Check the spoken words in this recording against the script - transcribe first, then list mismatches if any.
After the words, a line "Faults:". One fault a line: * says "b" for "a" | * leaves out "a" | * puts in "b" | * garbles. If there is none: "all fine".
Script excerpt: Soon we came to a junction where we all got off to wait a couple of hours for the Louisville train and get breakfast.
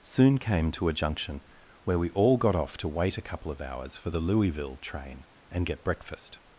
Soon came to a junction where we all got off to wait a couple of hours for the Louisville train and get breakfast.
Faults:
* leaves out "we"